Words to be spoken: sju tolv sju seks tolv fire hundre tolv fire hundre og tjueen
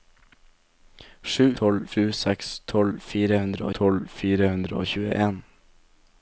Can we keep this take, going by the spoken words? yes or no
yes